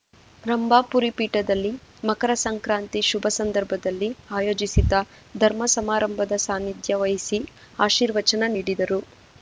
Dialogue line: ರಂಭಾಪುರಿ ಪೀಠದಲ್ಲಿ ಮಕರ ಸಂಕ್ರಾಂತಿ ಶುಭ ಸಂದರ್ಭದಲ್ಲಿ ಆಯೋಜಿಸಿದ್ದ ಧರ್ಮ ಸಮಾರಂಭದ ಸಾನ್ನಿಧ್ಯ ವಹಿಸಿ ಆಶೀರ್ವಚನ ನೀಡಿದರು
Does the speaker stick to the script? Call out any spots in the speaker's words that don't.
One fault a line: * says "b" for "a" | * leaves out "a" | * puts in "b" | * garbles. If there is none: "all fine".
all fine